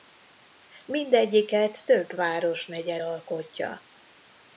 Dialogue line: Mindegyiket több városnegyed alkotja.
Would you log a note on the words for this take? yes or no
no